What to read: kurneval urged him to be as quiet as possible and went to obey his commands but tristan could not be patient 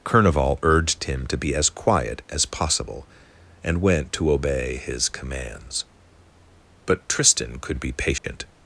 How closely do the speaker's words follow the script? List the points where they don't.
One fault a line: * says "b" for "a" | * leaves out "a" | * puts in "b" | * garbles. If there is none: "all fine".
* leaves out "not"